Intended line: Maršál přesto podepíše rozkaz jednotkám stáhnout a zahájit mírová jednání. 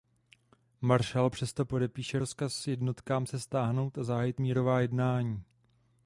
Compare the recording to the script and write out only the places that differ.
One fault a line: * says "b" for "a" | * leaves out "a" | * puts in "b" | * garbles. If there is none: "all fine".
* puts in "se"